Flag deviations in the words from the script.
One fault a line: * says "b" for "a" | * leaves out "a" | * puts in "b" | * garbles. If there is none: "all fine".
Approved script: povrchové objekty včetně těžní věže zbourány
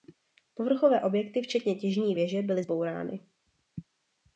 * puts in "byly"